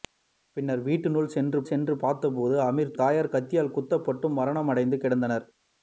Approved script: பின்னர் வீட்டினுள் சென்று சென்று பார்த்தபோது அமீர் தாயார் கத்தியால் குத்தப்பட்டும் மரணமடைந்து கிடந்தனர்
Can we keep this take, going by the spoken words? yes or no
yes